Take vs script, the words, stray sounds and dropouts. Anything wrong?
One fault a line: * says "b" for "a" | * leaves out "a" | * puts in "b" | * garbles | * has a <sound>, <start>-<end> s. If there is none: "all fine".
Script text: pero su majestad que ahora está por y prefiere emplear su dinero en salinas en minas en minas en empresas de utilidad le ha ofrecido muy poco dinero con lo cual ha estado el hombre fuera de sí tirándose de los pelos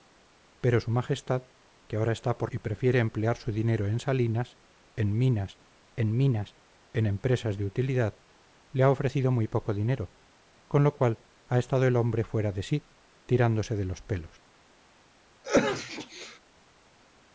* has a sneeze, 15.4-16.4 s